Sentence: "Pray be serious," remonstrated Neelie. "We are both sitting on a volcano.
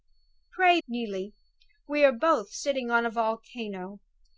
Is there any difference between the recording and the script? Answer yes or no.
yes